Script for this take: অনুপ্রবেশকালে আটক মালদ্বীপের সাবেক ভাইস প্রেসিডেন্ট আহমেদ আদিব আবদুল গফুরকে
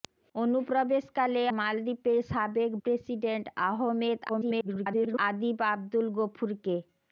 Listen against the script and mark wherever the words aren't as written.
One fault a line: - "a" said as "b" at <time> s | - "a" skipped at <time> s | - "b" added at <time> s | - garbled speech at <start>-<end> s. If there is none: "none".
- "আটক" skipped at 1.4 s
- "ভাইস" skipped at 2.7 s
- garbled speech at 4.3-5.2 s